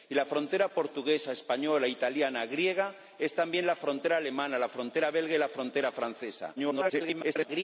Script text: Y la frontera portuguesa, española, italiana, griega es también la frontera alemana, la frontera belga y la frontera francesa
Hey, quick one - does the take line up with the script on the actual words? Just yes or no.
no